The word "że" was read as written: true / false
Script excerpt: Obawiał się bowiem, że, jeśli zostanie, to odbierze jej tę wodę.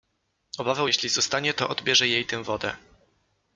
false